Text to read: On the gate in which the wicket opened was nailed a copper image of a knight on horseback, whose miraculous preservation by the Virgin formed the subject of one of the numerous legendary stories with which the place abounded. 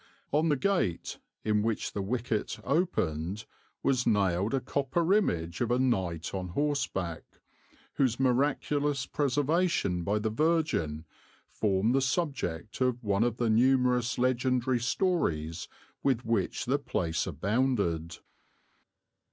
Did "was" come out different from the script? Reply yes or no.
no